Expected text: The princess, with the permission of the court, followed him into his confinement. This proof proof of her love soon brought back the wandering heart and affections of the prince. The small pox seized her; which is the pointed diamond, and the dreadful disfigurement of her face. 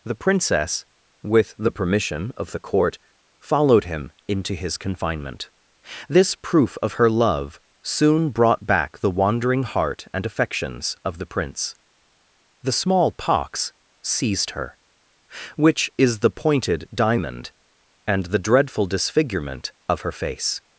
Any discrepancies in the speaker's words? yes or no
yes